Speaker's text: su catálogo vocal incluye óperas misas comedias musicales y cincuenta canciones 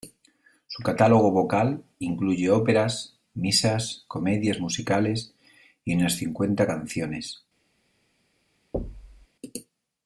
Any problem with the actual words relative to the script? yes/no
yes